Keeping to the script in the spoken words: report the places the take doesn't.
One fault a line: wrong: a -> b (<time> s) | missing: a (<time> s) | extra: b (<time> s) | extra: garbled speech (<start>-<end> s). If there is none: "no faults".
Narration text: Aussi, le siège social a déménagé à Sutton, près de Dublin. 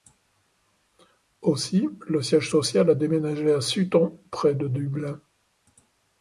no faults